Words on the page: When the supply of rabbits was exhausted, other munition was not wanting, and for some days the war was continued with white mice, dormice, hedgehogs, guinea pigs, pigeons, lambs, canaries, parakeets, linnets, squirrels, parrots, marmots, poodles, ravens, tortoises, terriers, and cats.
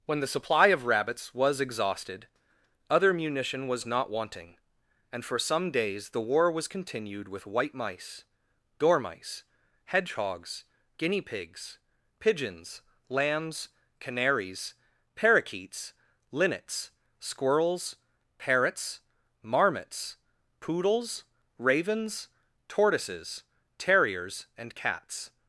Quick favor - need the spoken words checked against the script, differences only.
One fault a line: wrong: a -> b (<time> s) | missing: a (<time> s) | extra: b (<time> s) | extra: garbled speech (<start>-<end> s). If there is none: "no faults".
no faults